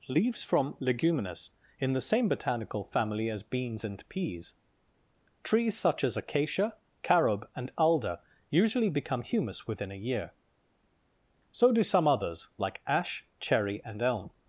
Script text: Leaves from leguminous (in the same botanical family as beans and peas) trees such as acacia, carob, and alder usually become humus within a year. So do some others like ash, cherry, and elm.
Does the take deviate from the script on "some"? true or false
false